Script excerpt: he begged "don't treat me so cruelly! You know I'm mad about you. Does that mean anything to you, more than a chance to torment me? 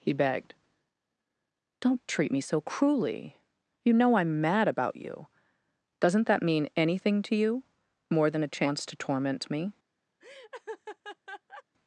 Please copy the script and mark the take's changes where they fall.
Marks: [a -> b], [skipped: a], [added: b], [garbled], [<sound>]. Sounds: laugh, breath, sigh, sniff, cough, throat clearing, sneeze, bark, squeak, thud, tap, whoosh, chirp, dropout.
he begged "don't treat me so cruelly! You know I'm mad about you. [Does -> Doesn't] that mean anything to you, more than a chance to torment me? [laugh]